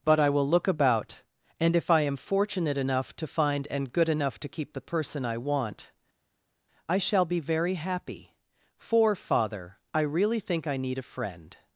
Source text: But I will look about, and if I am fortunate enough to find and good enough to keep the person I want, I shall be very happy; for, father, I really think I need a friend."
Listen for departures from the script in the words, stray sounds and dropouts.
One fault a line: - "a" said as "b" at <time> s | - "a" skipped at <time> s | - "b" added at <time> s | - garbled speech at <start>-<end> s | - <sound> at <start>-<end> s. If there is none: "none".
none